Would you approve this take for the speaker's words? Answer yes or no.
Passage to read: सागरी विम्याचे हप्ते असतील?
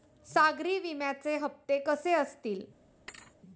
no